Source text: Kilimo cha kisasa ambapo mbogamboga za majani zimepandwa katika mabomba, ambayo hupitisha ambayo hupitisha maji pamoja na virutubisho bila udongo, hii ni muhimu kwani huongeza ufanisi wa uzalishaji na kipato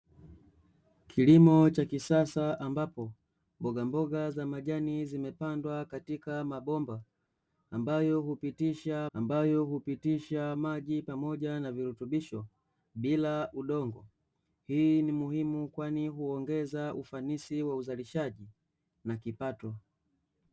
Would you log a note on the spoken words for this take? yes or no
no